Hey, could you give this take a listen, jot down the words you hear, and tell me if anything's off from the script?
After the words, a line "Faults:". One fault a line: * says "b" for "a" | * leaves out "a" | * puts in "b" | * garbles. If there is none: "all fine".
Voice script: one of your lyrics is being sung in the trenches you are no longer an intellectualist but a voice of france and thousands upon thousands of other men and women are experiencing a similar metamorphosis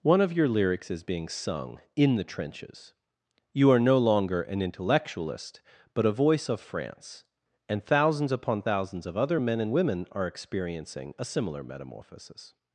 one of your lyrics is being sung in the trenches you are no longer an intellectualist but a voice of france and thousands upon thousands of other men and women are experiencing a similar metamorphosis
Faults:
all fine